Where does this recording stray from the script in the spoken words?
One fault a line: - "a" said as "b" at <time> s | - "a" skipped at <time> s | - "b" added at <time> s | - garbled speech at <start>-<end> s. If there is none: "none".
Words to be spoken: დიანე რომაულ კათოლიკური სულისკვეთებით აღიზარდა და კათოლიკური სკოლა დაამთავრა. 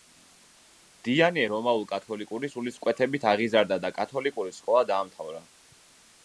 none